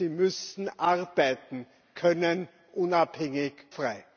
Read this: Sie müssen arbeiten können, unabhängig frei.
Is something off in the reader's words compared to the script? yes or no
no